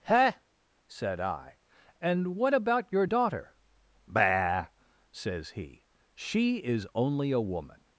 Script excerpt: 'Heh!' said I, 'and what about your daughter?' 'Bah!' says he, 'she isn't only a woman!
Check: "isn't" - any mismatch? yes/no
yes